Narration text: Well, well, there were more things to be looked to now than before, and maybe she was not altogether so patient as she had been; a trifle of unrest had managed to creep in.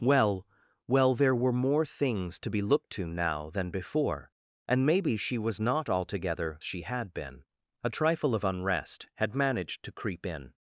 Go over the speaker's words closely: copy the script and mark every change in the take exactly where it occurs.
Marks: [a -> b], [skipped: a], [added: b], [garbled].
Well, well, there were more things to be looked to now than before, and maybe she was not altogether [skipped: so patient as] she had been; a trifle of unrest had managed to creep in.